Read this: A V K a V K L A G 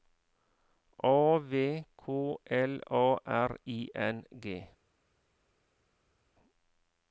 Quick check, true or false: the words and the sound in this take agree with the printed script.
false